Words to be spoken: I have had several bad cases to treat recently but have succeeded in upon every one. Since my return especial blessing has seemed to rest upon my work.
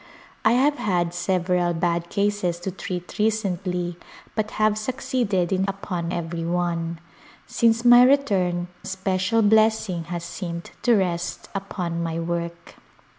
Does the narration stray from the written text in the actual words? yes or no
no